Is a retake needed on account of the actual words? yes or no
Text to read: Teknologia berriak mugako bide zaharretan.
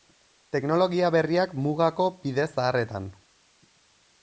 no